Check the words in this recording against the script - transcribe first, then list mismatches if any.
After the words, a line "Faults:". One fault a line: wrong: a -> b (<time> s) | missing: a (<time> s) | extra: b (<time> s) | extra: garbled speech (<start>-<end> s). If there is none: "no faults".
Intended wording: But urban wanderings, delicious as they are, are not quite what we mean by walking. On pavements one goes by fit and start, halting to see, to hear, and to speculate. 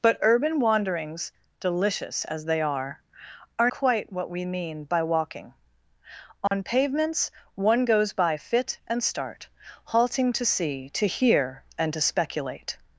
But urban wanderings, delicious as they are, are quite what we mean by walking. On pavements one goes by fit and start, halting to see, to hear, and to speculate.
Faults:
missing: not (3.7 s)